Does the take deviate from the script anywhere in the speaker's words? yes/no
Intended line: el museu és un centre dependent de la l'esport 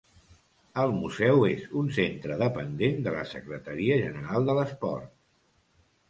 yes